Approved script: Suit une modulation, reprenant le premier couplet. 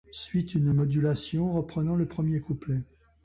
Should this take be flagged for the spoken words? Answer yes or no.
no